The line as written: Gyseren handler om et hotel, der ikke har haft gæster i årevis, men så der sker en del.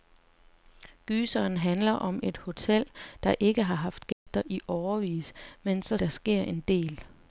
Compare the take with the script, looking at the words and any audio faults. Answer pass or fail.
fail